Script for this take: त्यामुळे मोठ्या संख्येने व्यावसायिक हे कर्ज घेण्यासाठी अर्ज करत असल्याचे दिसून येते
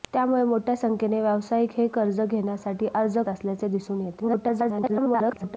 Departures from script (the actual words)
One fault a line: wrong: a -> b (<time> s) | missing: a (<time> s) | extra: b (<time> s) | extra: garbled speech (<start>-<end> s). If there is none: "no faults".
missing: करत (3.2 s)
extra: garbled speech (4.2-5.6 s)